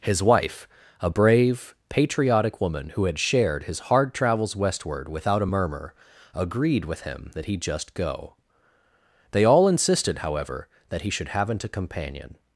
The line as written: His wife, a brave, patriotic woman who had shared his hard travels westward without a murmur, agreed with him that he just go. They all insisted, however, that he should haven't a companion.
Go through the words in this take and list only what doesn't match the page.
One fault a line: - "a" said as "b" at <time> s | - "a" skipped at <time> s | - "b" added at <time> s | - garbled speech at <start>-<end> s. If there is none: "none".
none